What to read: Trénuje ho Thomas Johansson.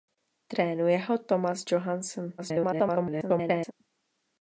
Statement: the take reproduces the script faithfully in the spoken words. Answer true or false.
false